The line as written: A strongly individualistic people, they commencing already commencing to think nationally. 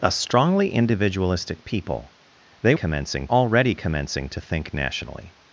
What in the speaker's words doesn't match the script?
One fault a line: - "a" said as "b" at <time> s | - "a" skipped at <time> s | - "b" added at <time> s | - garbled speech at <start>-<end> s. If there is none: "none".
none